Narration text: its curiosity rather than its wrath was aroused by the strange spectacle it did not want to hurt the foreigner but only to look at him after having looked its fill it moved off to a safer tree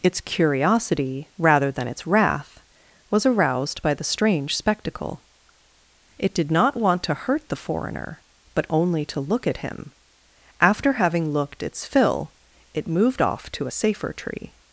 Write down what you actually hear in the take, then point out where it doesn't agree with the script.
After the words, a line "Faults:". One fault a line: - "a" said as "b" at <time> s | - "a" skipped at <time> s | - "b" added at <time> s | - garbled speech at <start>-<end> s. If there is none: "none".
its curiosity rather than its wrath was aroused by the strange spectacle it did not want to hurt the foreigner but only to look at him after having looked its fill it moved off to a safer tree
Faults:
none